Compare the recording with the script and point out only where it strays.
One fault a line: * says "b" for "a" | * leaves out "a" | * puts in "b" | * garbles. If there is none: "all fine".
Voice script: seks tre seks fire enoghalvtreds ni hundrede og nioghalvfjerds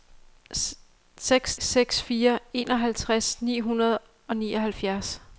* leaves out "tre"